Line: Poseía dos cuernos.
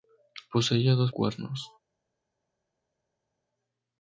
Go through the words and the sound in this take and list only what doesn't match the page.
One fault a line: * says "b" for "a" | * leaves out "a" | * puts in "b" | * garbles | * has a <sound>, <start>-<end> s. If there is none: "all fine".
all fine